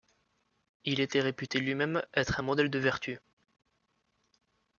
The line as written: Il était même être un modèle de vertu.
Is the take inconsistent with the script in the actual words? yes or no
yes